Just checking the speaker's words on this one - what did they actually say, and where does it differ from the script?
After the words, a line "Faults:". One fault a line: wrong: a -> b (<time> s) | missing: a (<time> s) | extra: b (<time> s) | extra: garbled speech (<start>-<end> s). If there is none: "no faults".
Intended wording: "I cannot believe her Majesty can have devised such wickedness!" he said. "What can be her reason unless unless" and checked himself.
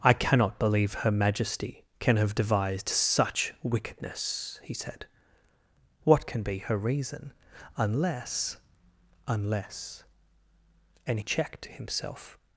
"I cannot believe her Majesty can have devised such wickedness!" he said. "What can be her reason unless unless" and checked himself.
Faults:
no faults